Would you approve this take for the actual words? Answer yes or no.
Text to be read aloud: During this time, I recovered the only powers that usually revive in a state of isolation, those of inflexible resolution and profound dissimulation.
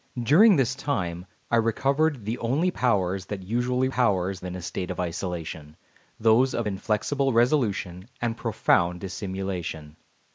no